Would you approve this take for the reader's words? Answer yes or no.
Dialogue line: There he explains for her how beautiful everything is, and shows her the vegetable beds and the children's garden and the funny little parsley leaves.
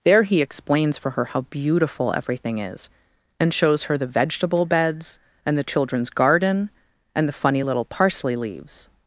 yes